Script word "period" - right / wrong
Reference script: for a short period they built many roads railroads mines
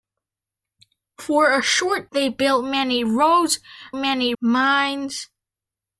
wrong